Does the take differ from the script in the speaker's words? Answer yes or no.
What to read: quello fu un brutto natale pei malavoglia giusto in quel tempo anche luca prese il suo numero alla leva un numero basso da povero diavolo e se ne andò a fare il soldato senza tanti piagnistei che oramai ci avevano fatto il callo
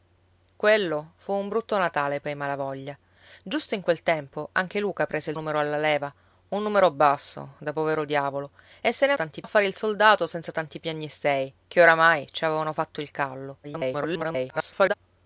yes